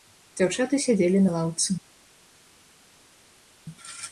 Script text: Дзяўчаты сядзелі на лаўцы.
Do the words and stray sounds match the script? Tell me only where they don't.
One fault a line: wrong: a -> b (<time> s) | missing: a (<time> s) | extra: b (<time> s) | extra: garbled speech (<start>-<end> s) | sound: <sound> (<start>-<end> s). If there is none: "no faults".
no faults